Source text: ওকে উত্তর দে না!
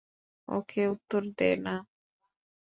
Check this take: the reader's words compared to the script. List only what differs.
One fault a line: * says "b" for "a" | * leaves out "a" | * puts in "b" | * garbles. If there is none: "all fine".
all fine